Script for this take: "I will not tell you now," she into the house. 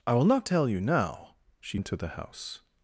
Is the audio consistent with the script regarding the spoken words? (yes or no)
yes